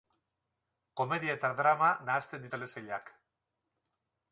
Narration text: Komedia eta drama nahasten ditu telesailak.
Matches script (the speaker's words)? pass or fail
fail